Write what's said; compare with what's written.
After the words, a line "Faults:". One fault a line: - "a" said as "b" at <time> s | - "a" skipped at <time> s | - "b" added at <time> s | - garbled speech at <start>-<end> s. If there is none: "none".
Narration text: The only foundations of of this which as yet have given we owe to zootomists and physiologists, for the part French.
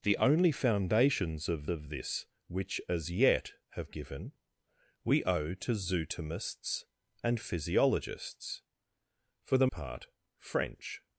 The only foundations of of this which as yet have given we owe to zootomists and physiologists, for the part French.
Faults:
none